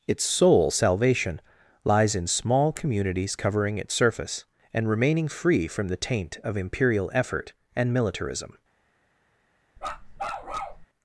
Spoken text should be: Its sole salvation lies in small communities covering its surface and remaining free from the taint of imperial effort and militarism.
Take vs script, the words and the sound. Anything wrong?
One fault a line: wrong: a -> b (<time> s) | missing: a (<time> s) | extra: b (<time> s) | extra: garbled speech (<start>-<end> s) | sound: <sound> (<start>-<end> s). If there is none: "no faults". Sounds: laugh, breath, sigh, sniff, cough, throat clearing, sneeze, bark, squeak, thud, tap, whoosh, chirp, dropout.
sound: bark (9.8-10.9 s)